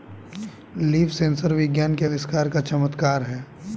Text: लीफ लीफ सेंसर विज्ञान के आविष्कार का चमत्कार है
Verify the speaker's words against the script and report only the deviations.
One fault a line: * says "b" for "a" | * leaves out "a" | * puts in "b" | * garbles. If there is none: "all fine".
* leaves out "लीफ"